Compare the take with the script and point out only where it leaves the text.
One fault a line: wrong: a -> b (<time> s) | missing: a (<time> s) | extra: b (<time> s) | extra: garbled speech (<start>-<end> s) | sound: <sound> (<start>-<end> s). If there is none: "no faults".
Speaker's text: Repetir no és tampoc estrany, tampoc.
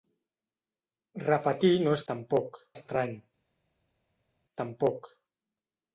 no faults